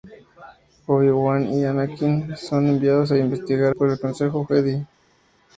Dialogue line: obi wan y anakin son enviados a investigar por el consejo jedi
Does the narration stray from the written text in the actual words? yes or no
no